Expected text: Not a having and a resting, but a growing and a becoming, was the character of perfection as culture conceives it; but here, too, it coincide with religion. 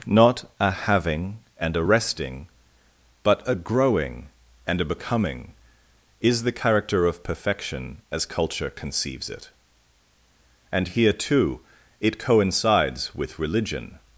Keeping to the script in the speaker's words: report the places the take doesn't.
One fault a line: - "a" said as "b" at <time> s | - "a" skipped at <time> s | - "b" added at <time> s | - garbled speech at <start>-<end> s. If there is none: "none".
- "was" said as "is" at 6.2 s
- "but" said as "and" at 10.7 s
- "coincide" said as "coincides" at 12.2 s